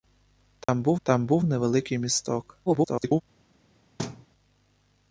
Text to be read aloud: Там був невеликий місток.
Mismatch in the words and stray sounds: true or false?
true